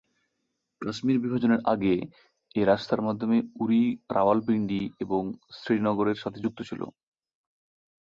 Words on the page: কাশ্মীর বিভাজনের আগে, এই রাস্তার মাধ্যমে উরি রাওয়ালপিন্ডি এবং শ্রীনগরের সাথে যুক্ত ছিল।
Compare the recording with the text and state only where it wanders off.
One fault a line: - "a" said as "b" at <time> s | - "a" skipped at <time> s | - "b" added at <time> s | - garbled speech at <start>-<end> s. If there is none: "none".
none